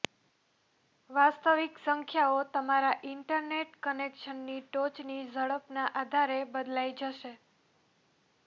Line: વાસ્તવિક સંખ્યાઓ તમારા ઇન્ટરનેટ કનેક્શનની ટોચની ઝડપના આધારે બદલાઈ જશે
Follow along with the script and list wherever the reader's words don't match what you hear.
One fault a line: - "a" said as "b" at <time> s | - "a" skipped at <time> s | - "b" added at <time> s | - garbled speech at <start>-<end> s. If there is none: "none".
none